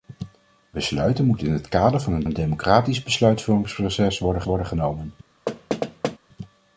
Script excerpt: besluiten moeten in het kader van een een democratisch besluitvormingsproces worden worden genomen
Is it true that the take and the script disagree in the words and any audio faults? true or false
true